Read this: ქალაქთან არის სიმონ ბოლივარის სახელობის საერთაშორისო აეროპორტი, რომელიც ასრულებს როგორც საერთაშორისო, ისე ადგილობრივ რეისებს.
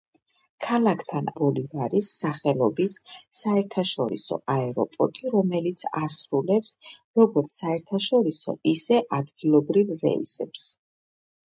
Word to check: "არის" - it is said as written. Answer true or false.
false